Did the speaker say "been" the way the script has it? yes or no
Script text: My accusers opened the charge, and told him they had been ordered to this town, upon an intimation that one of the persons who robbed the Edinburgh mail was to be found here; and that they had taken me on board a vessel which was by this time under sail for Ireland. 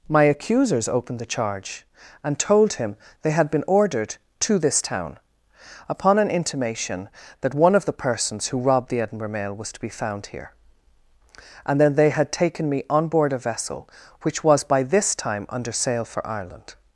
yes